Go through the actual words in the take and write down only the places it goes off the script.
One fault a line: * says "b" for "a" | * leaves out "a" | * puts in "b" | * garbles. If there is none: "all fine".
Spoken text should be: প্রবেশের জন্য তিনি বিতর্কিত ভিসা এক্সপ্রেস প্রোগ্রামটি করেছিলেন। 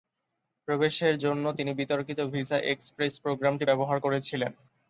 * puts in "ব্যবহার"